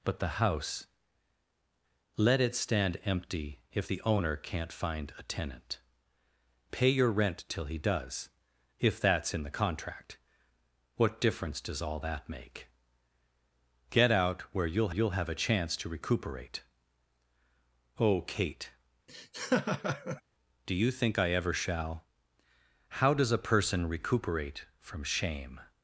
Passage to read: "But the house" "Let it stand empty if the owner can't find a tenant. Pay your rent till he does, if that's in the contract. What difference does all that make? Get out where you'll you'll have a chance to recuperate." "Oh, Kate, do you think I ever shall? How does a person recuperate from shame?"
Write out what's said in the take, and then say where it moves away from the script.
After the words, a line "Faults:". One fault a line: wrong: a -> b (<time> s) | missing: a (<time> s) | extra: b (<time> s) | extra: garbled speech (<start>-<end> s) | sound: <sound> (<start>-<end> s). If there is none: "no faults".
"But the house" "Let it stand empty if the owner can't find a tenant. Pay your rent till he does, if that's in the contract. What difference does all that make? Get out where you'll you'll have a chance to recuperate." "Oh, Kate, do you think I ever shall? How does a person recuperate from shame?"
Faults:
sound: laugh (19.1-20.2 s)